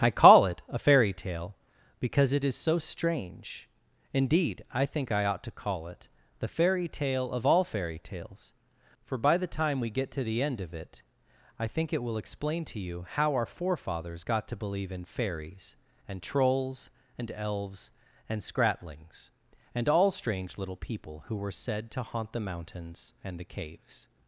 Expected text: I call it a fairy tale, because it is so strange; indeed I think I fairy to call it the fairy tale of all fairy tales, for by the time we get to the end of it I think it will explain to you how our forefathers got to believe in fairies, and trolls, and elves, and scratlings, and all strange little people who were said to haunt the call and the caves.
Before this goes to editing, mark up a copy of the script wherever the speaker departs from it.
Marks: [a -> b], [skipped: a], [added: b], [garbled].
I call it a fairy tale, because it is so strange; indeed I think I [fairy -> ought] to call it the fairy tale of all fairy tales, for by the time we get to the end of it I think it will explain to you how our forefathers got to believe in fairies, and trolls, and elves, and scratlings, and all strange little people who were said to haunt the [call -> mountains] and the caves.